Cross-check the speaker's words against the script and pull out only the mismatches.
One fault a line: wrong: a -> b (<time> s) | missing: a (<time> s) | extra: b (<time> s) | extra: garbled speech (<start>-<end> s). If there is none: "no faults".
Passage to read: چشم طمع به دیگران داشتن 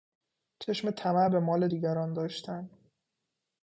extra: مال (1.4 s)